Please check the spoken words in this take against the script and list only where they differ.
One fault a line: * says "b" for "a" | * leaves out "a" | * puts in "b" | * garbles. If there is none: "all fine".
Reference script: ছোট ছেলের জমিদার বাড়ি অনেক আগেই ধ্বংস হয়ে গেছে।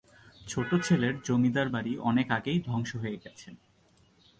all fine